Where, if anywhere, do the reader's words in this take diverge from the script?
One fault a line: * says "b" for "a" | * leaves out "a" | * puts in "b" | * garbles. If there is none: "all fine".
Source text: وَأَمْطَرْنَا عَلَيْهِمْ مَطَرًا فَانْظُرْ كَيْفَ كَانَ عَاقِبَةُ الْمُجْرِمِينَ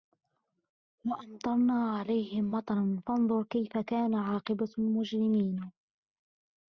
all fine